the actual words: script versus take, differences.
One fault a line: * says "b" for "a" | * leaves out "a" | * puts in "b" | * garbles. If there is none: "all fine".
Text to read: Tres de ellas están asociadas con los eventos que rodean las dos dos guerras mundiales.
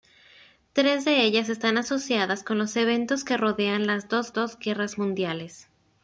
all fine